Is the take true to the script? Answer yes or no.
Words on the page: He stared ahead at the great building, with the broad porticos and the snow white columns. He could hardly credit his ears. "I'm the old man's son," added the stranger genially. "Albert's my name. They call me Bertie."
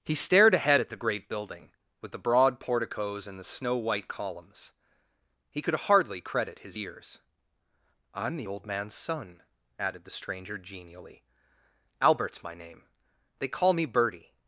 yes